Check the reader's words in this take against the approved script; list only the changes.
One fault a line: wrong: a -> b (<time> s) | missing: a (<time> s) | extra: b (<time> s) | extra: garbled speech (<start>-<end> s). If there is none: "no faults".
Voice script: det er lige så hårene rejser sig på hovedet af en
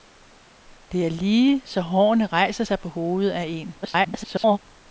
extra: garbled speech (3.8-4.6 s)